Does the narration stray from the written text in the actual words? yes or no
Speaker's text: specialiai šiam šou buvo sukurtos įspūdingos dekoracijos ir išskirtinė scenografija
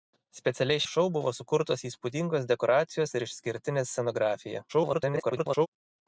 yes